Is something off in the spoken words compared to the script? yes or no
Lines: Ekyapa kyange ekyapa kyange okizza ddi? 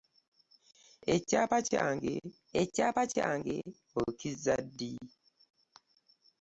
no